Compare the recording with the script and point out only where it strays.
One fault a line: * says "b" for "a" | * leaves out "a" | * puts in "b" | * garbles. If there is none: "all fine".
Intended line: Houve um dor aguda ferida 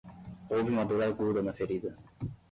* says "uma" for "um"
* puts in "na"